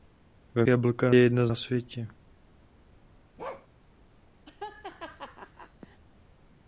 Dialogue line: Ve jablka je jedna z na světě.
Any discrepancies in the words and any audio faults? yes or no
yes